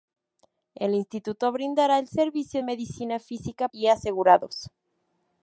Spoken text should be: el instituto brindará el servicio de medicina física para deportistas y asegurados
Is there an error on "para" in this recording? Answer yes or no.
yes